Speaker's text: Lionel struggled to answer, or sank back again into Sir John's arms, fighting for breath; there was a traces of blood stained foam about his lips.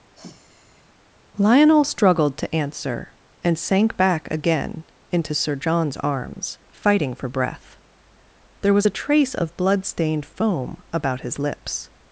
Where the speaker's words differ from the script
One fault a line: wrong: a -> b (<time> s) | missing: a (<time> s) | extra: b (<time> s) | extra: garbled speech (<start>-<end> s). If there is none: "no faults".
wrong: or -> and (3.4 s)
wrong: traces -> trace (8.9 s)